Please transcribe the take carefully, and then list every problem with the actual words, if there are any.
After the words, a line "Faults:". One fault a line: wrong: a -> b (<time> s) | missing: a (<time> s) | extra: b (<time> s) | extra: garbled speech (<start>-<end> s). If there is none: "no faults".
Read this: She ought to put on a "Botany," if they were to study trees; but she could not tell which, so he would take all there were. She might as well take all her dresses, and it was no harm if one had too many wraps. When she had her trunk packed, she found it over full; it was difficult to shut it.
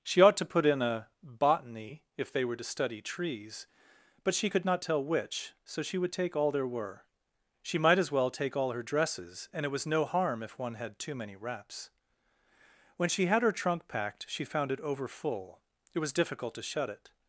She ought to put in a "Botany," if they were to study trees; but she could not tell which, so she would take all there were. She might as well take all her dresses, and it was no harm if one had too many wraps. When she had her trunk packed, she found it over full; it was difficult to shut it.
Faults:
wrong: on -> in (0.7 s)
wrong: he -> she (5.8 s)